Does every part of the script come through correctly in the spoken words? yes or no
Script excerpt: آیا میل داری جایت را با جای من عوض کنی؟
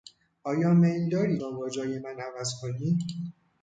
no